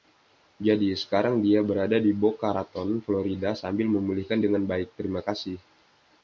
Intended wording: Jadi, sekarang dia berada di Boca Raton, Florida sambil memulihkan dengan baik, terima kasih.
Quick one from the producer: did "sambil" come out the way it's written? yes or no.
yes